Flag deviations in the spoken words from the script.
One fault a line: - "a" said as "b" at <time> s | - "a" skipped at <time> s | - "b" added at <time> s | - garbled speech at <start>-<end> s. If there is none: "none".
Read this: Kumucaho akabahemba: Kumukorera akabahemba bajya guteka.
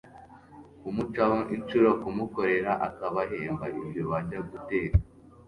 - "akabahemba" said as "inshuro" at 1.6 s
- "ibyo" added at 3.8 s